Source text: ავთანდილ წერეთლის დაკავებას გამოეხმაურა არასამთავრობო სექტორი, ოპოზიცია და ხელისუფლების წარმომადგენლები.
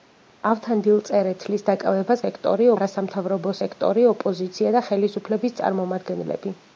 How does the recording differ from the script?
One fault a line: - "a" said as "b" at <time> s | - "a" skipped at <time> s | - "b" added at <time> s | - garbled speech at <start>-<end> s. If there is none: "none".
- "გამოეხმაურა" said as "სექტორი" at 2.2 s